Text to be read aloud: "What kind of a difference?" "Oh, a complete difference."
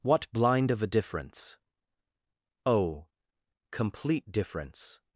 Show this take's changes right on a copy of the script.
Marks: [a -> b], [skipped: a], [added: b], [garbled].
"What [kind -> blind] of a difference?" "Oh, [skipped: a] complete difference."